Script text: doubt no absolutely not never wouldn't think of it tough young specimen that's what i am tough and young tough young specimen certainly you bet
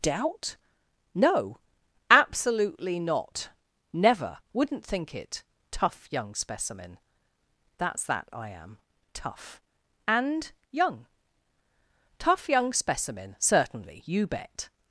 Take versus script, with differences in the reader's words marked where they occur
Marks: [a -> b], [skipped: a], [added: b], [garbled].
doubt no absolutely not never wouldn't think [skipped: of] it tough young specimen that's [what -> that] i am tough and young tough young specimen certainly you bet